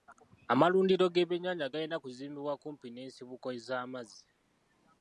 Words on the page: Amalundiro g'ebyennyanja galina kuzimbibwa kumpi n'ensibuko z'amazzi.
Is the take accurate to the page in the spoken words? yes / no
yes